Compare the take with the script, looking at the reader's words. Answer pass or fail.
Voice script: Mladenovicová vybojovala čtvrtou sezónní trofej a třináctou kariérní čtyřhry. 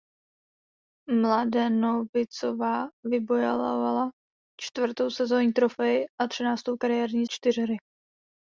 pass